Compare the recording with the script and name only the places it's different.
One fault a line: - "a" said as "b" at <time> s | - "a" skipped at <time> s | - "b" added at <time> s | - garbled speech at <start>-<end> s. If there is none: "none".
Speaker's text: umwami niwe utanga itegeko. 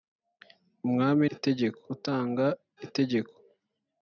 - "niwe" said as "itegeko" at 1.3 s